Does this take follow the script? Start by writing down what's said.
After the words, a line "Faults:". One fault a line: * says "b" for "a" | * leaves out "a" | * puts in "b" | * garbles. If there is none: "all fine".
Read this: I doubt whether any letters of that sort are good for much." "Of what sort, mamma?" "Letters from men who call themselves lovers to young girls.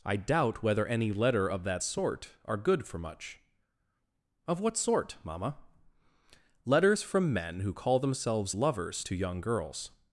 I doubt whether any letter of that sort are good for much." "Of what sort, mamma?" "Letters from men who call themselves lovers to young girls.
Faults:
* says "letter" for "letters"